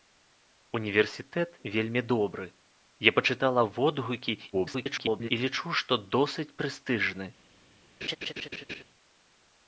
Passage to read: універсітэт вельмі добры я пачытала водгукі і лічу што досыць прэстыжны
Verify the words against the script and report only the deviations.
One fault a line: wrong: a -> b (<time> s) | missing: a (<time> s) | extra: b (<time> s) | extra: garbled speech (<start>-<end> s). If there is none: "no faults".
extra: garbled speech (4.5-5.3 s)